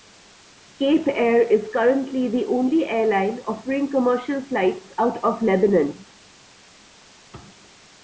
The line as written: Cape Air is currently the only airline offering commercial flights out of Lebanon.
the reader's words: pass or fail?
pass